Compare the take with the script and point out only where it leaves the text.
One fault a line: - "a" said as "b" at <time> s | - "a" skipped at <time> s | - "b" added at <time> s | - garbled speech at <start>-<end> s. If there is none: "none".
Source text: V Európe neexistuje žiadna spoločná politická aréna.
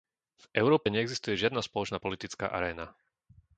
none